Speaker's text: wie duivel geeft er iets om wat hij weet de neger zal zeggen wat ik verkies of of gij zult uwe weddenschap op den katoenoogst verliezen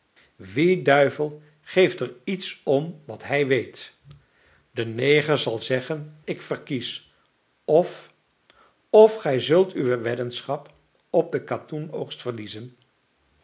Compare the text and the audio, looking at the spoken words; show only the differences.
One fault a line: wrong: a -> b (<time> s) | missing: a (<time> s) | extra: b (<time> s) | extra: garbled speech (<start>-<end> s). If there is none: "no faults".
missing: wat (6.2 s)